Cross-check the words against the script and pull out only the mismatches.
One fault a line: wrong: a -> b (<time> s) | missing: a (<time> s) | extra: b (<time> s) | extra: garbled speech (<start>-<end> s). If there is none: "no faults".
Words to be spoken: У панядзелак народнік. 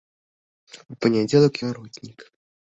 no faults